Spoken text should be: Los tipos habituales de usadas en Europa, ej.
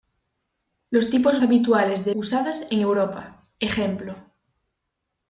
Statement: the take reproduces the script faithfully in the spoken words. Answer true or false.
true